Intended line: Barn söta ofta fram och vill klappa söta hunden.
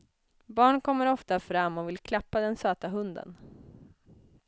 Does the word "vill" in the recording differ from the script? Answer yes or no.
no